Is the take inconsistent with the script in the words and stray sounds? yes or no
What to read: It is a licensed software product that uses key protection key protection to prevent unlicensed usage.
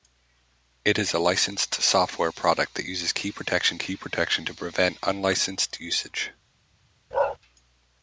yes